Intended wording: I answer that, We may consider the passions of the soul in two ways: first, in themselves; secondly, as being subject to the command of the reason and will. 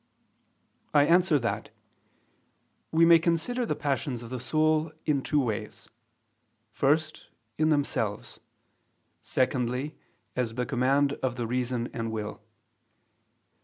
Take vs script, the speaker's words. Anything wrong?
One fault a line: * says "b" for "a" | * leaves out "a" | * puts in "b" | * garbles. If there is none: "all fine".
* leaves out "being subject to"